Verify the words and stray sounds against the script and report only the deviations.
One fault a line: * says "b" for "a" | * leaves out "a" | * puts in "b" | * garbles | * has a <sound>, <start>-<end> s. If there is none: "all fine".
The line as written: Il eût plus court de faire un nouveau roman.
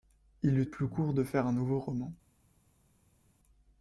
all fine